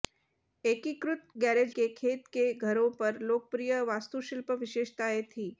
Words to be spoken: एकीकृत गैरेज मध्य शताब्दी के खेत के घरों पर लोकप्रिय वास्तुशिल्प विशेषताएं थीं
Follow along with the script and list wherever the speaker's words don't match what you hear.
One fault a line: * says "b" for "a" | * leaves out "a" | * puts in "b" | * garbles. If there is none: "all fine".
* leaves out "मध्य शताब्दी"